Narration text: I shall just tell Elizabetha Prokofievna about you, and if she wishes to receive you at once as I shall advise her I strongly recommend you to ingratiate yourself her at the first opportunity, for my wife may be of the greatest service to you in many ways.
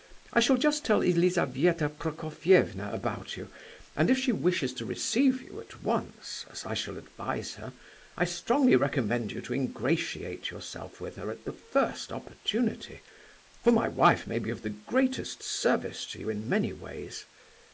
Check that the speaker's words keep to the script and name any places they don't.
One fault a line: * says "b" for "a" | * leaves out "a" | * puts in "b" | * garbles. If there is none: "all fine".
* puts in "with"